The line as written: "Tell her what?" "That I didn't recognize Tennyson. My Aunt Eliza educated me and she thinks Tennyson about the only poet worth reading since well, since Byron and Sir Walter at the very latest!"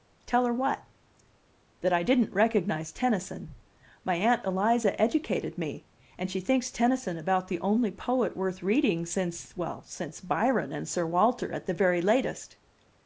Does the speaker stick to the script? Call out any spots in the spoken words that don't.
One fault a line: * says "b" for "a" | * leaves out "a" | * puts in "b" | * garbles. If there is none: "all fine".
all fine